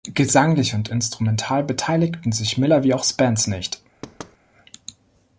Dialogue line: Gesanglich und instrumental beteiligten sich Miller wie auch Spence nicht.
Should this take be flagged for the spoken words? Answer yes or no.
no